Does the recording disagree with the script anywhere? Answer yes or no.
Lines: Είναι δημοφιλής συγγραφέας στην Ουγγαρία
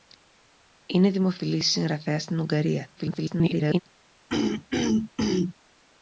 yes